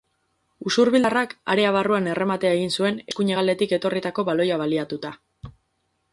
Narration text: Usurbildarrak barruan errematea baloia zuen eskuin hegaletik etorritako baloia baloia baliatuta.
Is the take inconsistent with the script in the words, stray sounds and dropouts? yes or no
yes